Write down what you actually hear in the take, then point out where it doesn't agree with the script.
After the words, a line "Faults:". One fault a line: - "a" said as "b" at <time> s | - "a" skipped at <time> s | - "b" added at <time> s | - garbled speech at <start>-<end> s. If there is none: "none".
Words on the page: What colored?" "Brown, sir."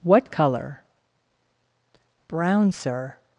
What color?" "Brown, sir."
Faults:
- "colored" said as "color" at 0.3 s